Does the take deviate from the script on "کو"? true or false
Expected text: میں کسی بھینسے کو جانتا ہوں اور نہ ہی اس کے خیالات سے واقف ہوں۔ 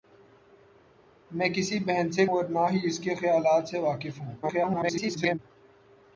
true